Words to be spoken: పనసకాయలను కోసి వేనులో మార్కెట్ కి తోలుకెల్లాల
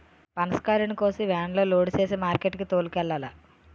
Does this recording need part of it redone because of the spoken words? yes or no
yes